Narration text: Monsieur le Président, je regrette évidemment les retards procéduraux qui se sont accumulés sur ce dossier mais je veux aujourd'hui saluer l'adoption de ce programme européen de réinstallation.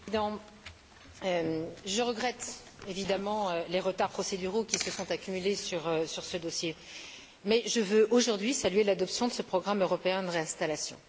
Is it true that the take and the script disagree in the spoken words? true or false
false